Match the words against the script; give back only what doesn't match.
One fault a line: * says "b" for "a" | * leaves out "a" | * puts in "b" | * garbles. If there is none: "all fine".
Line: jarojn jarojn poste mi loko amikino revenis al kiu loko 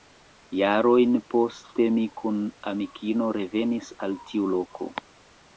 * leaves out "jarojn"
* says "kun" for "loko"
* says "tiu" for "kiu"